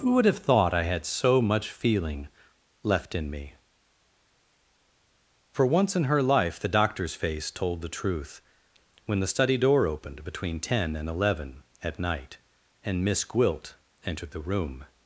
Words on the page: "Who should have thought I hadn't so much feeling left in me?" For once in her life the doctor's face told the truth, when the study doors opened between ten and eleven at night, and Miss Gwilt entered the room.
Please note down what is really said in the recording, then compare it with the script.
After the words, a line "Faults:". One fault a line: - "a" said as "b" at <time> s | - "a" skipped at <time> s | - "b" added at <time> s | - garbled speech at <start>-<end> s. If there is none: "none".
"Who would have thought I had so much feeling left in me?" For once in her life the doctor's face told the truth, when the study door opened between ten and eleven at night, and Miss Gwilt entered the room.
Faults:
- "should" said as "would" at 0.1 s
- "hadn't" said as "had" at 0.8 s
- "doors" said as "door" at 9.6 s